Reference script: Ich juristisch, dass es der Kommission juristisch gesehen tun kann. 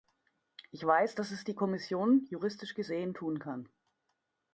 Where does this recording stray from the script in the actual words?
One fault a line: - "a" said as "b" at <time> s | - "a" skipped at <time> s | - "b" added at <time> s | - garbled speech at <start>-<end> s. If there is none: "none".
- "juristisch" said as "weiß" at 0.8 s
- "der" said as "die" at 1.4 s